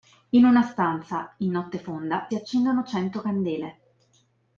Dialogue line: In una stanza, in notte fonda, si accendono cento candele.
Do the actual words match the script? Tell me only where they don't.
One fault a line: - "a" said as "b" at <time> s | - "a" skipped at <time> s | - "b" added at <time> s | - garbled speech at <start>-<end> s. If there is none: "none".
- "si" skipped at 2.2 s